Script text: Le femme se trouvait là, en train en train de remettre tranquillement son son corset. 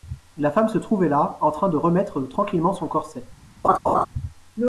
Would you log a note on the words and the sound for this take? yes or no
yes